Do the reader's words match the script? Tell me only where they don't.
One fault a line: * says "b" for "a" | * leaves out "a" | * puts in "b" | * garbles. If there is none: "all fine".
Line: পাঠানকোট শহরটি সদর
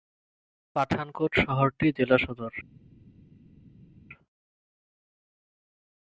* puts in "জেলা"